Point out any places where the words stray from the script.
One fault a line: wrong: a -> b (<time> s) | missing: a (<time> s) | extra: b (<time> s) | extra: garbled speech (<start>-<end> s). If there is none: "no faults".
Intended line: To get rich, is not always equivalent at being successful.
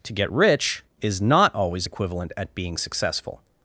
no faults